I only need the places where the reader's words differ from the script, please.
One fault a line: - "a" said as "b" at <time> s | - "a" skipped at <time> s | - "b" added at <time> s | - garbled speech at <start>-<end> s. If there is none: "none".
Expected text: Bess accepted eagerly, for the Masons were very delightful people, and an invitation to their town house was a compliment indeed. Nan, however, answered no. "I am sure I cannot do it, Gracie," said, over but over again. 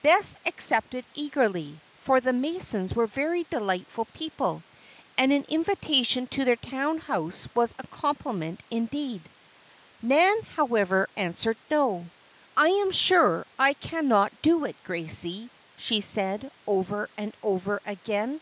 - "she" added at 15.8 s
- "but" said as "and" at 17.1 s